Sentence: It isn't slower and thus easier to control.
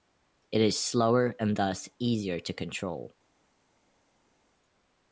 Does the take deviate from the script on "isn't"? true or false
true